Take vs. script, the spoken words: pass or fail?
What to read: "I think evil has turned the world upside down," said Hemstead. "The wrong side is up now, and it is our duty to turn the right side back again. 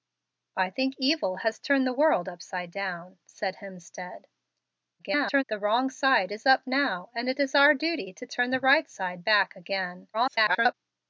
fail